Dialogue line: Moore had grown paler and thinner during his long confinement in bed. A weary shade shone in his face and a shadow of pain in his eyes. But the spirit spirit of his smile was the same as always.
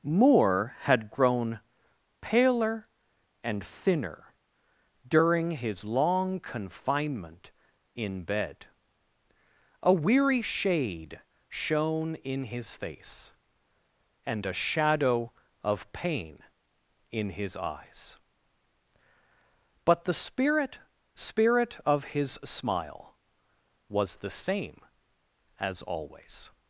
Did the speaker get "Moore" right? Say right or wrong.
right